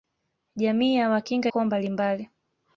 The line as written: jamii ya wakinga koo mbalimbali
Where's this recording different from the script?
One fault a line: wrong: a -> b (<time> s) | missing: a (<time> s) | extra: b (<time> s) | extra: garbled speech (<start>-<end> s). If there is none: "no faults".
no faults